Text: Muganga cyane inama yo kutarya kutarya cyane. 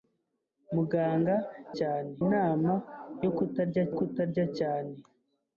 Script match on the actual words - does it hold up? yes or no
yes